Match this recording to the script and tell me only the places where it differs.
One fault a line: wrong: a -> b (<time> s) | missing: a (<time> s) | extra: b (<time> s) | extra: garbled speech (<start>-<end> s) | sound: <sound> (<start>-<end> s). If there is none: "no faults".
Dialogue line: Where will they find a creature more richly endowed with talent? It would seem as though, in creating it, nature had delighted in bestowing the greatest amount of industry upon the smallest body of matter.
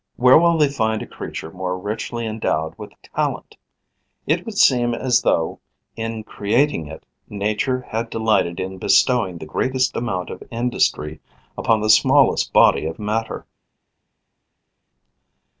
no faults